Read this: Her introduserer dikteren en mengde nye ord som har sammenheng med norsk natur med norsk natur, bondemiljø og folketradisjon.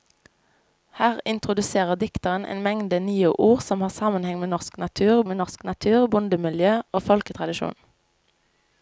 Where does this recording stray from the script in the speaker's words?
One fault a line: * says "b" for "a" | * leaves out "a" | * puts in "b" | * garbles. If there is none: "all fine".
all fine